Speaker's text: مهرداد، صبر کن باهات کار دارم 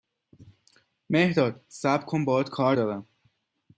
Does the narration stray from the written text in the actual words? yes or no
no